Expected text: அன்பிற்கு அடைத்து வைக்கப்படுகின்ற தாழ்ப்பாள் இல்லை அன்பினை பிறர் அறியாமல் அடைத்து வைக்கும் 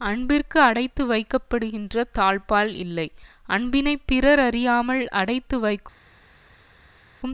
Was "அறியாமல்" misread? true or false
false